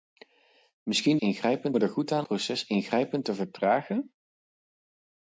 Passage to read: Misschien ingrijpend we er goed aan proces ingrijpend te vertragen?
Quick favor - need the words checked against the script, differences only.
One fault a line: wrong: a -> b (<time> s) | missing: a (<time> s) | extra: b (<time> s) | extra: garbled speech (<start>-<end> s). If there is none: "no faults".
no faults